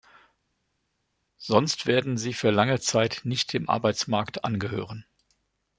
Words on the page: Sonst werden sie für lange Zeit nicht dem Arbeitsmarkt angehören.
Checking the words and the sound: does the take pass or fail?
pass